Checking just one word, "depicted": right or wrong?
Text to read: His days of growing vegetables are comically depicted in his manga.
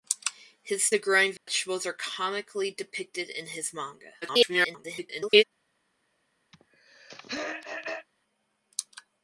right